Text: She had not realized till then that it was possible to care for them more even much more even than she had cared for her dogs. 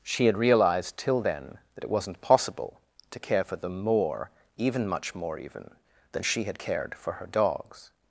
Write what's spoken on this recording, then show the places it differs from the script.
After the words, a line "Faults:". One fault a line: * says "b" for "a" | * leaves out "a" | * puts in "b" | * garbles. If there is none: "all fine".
She had realized till then that it wasn't possible to care for them more even much more even than she had cared for her dogs.
Faults:
* leaves out "not"
* says "wasn't" for "was"